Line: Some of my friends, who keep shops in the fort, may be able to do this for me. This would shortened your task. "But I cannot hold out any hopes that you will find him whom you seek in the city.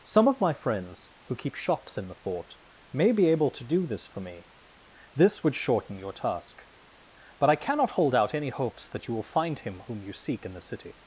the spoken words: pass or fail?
fail